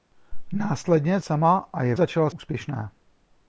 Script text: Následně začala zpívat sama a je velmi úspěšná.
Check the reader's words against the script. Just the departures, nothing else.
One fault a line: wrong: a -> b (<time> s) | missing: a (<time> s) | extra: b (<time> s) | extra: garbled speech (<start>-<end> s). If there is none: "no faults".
missing: začala zpívat (1.2 s)
wrong: velmi -> začala (1.9 s)